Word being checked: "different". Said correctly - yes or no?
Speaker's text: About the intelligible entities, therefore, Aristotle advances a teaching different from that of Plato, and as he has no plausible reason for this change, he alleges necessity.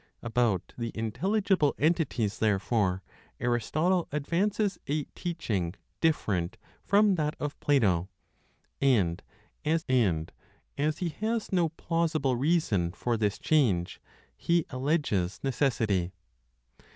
yes